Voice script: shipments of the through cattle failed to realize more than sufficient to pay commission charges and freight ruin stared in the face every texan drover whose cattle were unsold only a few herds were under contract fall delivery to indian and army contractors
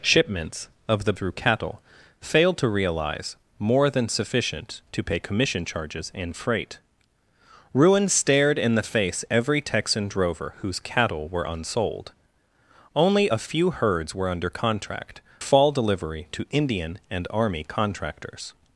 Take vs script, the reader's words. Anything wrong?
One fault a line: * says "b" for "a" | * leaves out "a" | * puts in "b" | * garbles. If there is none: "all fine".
all fine